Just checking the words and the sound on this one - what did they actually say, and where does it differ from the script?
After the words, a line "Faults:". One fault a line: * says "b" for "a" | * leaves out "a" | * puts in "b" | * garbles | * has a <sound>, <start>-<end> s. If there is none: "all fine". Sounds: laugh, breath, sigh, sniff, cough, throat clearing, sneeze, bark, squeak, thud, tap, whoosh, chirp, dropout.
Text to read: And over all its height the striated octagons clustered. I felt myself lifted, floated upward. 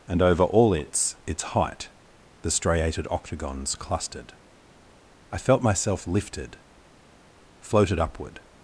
And over all its its height the striated octagons clustered. I felt myself lifted, floated upward.
Faults:
* puts in "its"